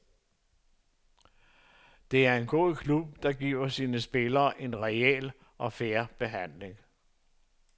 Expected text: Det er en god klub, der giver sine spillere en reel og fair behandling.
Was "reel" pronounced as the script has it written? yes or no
yes